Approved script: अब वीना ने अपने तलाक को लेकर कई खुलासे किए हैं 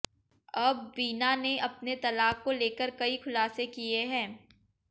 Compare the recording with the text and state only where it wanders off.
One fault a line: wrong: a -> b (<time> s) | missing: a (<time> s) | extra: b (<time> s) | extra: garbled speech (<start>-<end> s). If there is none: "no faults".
no faults